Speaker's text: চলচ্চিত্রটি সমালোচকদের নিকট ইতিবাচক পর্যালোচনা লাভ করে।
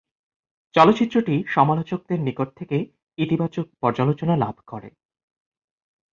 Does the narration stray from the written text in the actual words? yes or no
yes